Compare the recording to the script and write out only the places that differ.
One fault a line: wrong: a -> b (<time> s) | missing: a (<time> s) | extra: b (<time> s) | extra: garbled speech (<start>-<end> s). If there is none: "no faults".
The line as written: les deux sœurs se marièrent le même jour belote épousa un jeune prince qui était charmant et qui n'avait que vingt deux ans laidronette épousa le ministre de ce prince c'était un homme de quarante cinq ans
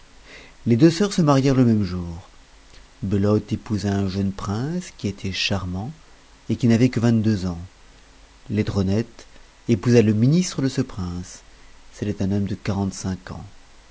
no faults